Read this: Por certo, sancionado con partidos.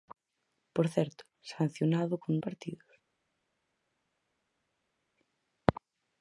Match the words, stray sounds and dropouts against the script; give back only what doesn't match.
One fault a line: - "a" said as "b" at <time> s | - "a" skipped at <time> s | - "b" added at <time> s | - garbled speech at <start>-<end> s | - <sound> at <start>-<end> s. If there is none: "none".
none